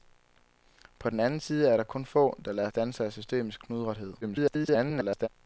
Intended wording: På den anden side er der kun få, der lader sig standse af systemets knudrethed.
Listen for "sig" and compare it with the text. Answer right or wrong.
wrong